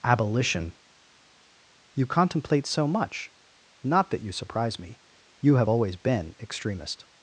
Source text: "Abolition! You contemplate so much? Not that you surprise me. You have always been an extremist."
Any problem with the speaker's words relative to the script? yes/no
yes